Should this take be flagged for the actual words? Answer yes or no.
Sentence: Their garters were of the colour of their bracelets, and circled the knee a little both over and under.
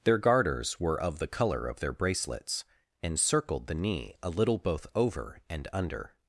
no